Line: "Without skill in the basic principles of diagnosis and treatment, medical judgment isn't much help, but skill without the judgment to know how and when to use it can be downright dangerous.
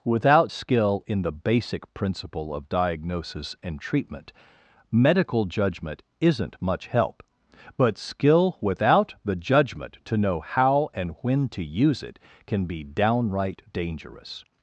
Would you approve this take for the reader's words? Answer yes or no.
no